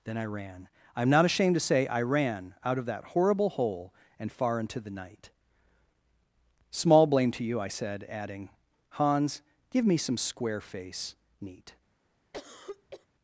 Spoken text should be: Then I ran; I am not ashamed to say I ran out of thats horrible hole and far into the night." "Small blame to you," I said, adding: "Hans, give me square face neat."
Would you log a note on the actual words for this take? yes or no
yes